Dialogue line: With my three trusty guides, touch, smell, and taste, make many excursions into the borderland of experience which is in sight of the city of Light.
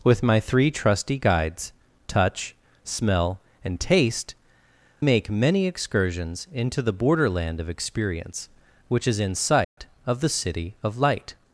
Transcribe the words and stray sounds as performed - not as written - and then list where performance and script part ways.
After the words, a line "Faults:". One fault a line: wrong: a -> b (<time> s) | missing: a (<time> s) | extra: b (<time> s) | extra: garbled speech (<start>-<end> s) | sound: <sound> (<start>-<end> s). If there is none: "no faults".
With my three trusty guides, touch, smell, and taste, make many excursions into the borderland of experience which is in sight of the city of Light.
Faults:
sound: dropout (9.6-9.8 s)